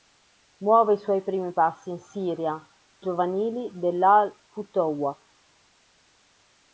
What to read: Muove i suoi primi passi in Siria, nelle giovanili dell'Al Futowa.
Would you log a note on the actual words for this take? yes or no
yes